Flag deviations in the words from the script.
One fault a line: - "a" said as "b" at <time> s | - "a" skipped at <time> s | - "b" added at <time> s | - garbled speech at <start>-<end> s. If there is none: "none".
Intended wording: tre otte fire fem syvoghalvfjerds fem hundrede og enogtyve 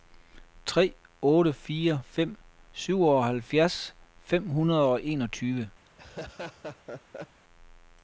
none